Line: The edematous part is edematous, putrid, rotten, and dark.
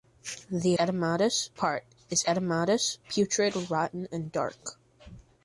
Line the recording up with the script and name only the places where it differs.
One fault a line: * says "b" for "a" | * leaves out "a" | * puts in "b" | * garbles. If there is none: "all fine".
all fine